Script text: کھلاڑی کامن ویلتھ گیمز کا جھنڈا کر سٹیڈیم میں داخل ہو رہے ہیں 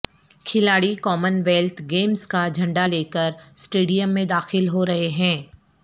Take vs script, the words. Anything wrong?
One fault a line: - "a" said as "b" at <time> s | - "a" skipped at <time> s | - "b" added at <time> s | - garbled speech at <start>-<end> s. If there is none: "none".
- "لے" added at 2.8 s